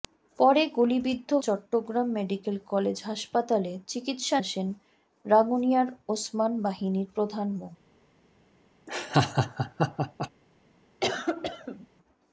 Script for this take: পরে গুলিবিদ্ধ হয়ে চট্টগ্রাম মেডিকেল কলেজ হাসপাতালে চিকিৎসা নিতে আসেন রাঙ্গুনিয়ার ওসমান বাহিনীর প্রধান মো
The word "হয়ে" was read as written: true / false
false